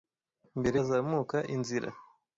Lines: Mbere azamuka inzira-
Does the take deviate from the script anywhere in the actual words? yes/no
no